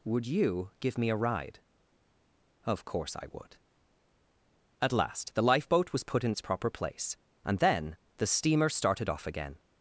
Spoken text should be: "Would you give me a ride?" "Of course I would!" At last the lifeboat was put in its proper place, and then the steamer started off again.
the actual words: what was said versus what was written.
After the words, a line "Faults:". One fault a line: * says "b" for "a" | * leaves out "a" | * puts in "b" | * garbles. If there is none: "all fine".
"Would you give me a ride?" "Of course I would!" At last the lifeboat was put in its proper place, and then the steamer started off again.
Faults:
all fine